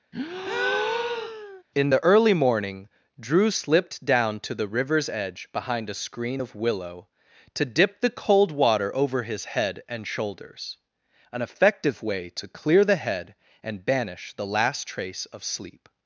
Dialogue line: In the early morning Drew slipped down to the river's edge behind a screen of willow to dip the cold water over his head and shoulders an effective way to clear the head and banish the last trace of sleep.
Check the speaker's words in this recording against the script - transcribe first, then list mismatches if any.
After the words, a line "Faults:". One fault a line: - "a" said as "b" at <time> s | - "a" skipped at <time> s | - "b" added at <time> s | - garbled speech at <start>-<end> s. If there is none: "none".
In the early morning Drew slipped down to the river's edge behind a screen of willow to dip the cold water over his head and shoulders an effective way to clear the head and banish the last trace of sleep.
Faults:
none